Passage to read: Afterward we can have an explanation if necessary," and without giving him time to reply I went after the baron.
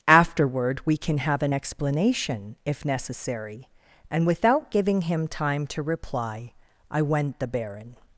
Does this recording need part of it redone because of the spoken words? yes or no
yes